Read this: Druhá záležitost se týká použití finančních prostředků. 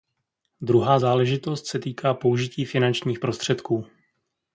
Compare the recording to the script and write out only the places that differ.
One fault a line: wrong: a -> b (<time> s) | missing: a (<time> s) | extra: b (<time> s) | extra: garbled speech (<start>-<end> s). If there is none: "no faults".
no faults